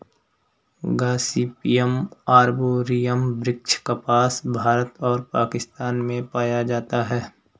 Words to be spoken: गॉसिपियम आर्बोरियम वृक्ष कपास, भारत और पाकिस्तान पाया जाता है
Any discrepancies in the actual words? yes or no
yes